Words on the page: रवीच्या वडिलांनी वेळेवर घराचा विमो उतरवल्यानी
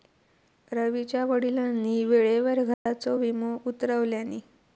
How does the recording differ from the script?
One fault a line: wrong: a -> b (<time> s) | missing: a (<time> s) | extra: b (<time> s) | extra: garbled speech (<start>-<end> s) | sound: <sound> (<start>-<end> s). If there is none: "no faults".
sound: dropout (2.7-2.9 s)